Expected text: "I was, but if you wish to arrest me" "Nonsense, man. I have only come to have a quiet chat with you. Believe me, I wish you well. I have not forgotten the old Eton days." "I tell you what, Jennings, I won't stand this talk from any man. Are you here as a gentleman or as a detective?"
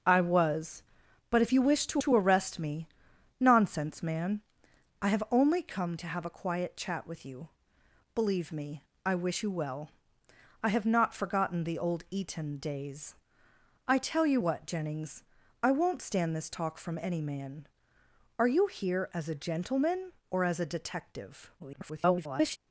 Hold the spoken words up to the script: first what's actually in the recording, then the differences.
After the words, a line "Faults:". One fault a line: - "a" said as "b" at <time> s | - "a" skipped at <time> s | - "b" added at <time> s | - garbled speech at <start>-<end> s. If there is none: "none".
"I was, but if you wish to to arrest me" "Nonsense, man. I have only come to have a quiet chat with you. Believe me, I wish you well. I have not forgotten the old Eton days." "I tell you what, Jennings, I won't stand this talk from any man. Are you here as a gentleman or as a detective?" [garbled]
Faults:
- "to" added at 2.0 s
- garbled speech at 21.6-22.6 s